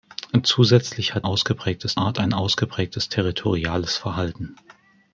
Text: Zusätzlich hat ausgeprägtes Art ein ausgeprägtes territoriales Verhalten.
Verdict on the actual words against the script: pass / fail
pass